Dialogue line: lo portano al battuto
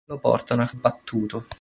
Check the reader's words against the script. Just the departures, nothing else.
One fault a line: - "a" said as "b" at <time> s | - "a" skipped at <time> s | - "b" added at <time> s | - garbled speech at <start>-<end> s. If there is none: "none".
none